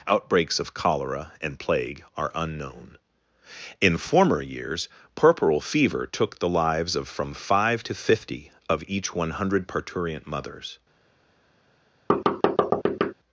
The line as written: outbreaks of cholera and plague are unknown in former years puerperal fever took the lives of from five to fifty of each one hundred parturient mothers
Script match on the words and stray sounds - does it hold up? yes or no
no